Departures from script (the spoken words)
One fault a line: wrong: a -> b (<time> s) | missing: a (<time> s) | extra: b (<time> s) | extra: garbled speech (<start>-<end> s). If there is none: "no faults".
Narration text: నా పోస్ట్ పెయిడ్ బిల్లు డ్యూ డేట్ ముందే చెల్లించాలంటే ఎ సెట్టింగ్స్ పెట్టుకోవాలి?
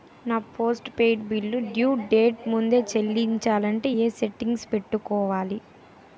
no faults